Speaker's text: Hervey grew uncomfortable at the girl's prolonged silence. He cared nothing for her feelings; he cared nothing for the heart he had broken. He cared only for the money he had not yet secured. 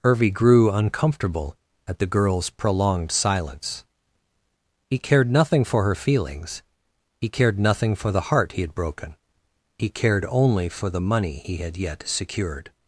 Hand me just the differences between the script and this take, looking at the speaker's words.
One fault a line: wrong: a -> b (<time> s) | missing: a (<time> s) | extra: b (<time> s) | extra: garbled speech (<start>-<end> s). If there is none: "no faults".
missing: not (11.8 s)